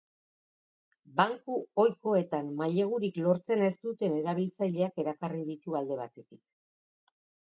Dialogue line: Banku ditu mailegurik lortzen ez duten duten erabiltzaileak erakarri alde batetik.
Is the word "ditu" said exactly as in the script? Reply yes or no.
no